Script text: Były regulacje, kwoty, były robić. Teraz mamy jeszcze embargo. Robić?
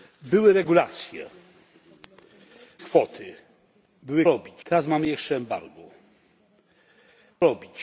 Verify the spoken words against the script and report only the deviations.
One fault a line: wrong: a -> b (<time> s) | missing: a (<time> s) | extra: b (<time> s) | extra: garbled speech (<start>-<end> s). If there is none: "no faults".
no faults